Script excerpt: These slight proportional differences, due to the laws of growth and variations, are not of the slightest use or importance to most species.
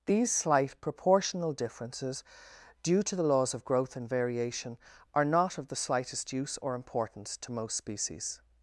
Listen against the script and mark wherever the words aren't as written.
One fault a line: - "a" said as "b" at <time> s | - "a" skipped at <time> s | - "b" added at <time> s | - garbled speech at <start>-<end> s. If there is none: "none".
- "variations" said as "variation" at 4.1 s